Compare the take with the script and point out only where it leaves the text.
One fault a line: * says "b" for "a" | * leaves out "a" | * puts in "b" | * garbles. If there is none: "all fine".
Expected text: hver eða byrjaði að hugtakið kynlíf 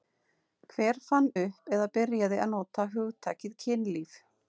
* puts in "fann upp"
* puts in "nota"